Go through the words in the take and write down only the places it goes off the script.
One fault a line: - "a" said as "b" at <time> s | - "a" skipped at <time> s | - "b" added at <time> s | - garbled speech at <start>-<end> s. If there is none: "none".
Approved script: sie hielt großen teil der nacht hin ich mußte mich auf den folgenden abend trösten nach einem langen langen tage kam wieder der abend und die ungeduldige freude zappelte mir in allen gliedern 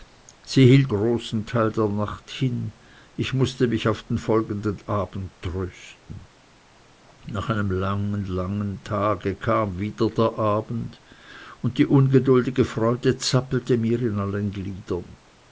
none